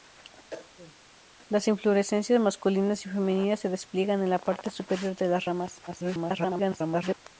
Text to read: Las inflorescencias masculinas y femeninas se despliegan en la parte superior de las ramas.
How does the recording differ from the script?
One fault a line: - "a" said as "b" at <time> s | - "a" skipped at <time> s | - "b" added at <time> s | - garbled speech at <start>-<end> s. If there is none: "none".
- garbled speech at 5.9-7.1 s